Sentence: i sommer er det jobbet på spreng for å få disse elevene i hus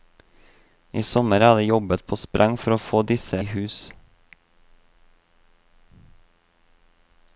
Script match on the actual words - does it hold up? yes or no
no